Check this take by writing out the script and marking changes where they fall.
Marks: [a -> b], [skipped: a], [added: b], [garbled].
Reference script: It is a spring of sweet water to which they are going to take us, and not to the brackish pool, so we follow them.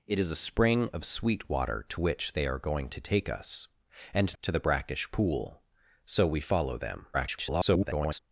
It is a spring of sweet water to which they are going to take us, and [skipped: not] to the brackish pool, so we follow them. [garbled]